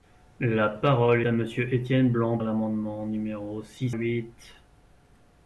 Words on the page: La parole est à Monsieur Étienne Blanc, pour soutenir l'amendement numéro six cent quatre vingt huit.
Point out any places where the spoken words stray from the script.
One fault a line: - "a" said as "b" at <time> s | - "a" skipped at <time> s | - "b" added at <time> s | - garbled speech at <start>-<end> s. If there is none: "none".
- "est" skipped at 1.2 s
- "pour soutenir" skipped at 2.4 s
- "cent quatre vingt" skipped at 3.9 s